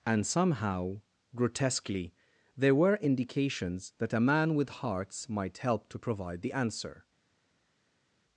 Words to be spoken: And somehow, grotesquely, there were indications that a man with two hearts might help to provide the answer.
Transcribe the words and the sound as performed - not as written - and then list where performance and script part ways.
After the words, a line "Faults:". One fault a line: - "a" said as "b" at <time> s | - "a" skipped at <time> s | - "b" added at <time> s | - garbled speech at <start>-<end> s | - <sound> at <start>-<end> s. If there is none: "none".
And somehow, grotesquely, there were indications that a man with hearts might help to provide the answer.
Faults:
- "two" skipped at 4.7 s